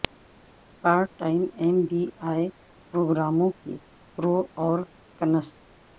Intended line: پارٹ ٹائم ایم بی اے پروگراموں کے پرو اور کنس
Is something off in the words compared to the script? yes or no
no